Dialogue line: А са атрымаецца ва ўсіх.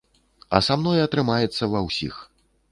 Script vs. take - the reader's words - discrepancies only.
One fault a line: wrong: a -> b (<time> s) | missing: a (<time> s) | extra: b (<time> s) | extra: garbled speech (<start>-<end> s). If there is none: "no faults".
extra: мной (0.8 s)